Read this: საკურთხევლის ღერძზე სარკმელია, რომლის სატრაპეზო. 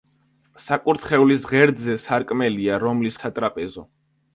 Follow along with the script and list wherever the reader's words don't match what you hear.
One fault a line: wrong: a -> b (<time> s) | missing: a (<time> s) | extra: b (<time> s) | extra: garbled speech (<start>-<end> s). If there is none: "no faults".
no faults